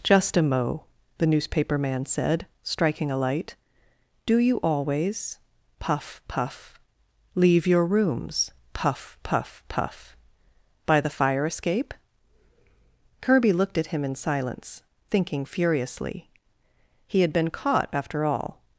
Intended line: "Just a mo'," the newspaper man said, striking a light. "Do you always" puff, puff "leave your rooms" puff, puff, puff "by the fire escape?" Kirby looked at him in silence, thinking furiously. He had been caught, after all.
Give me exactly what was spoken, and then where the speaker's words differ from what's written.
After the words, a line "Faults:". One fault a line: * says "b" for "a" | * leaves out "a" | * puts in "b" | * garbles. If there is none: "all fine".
"Just a mo'," the newspaper man said, striking a light. "Do you always" puff, puff "leave your rooms" puff, puff, puff "by the fire escape?" Kirby looked at him in silence, thinking furiously. He had been caught, after all.
Faults:
all fine